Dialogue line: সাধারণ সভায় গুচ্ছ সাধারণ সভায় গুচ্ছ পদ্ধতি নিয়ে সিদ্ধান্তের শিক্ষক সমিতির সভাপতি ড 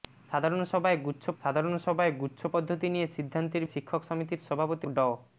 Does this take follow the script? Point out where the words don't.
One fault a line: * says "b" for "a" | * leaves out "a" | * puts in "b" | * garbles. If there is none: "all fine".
all fine